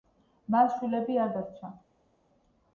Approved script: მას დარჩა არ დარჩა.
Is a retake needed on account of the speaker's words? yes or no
yes